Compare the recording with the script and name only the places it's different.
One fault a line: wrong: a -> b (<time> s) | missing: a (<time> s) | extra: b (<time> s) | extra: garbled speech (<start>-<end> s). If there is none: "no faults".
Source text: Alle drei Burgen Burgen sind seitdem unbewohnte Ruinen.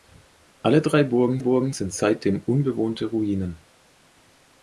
no faults